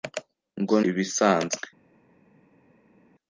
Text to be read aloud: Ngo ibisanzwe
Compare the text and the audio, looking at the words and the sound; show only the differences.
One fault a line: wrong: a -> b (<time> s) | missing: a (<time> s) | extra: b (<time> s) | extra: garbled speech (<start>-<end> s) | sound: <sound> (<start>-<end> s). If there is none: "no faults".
no faults